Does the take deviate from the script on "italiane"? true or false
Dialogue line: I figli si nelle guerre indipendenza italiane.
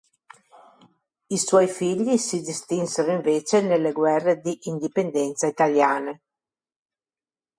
false